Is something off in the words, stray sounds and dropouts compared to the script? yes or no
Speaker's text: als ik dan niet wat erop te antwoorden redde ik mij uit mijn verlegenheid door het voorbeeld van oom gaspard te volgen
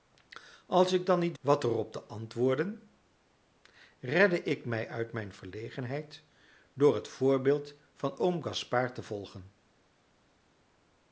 no